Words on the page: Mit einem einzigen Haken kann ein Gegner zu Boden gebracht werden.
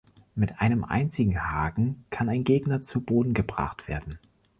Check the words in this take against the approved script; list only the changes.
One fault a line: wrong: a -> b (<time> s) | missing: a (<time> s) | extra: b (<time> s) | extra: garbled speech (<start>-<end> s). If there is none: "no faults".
no faults